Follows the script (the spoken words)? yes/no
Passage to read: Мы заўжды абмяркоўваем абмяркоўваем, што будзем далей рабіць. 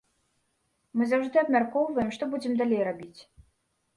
no